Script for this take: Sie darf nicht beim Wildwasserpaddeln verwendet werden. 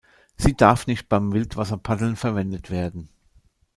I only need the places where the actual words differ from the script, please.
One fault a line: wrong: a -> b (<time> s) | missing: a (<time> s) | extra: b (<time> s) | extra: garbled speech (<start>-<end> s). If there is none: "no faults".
no faults